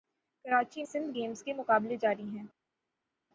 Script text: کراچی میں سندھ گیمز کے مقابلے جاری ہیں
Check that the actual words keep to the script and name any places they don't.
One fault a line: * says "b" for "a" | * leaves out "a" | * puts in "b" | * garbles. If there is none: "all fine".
* leaves out "میں"